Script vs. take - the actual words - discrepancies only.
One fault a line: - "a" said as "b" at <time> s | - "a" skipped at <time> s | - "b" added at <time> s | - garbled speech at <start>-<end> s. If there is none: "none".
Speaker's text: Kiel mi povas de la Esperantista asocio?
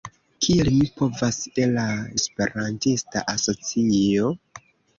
none